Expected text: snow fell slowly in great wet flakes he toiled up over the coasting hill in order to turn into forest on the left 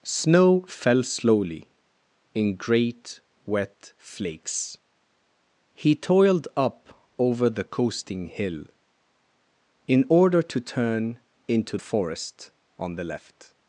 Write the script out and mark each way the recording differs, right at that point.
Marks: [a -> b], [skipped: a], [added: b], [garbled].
snow fell slowly in great wet flakes he toiled up over the coasting hill in order to turn into forest on the left